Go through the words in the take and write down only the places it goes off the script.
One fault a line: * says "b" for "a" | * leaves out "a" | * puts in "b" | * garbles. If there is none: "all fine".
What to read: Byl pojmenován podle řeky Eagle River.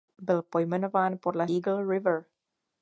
* leaves out "řeky"